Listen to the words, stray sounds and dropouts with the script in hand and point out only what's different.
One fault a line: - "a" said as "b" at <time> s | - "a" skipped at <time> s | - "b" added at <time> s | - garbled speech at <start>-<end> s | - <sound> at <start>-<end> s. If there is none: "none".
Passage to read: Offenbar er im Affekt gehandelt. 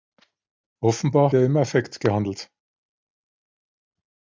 none